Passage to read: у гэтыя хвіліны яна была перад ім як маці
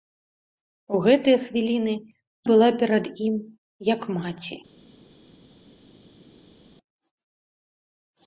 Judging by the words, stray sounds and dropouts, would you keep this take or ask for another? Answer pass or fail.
fail